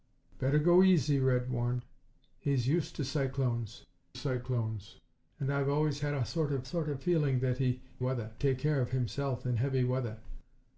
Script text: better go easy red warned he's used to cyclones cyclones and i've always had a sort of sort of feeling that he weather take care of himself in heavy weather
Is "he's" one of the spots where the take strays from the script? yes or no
no